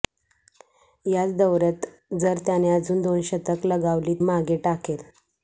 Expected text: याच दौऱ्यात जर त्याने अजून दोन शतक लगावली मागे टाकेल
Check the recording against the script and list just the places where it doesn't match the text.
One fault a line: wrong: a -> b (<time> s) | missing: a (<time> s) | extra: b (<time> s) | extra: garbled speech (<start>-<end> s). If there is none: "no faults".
no faults